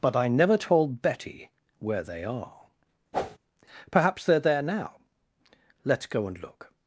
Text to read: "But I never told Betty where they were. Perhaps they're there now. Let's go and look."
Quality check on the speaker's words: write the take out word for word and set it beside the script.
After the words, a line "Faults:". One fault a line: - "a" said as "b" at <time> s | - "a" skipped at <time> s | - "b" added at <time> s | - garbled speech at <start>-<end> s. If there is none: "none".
"But I never told Betty where they are. Perhaps they're there now. Let's go and look."
Faults:
- "were" said as "are" at 2.2 s